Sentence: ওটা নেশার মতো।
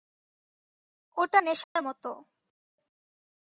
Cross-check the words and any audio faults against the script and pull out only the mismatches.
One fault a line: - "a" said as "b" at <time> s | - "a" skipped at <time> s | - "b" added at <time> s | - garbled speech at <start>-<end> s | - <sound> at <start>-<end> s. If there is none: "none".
- dropout at 1.6-1.8 s